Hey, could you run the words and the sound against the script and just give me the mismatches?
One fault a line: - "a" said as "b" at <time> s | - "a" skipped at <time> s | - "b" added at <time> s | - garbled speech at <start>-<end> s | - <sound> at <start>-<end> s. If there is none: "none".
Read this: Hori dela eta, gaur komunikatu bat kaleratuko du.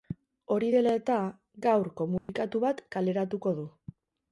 - dropout at 2.2-2.3 s